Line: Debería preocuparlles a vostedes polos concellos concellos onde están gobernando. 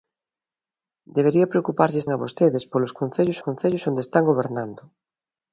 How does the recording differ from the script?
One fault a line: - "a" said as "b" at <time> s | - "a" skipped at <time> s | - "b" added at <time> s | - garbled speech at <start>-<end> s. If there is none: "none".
none